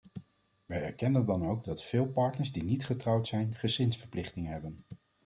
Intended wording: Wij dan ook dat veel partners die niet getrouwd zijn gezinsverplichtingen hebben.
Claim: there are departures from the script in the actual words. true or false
true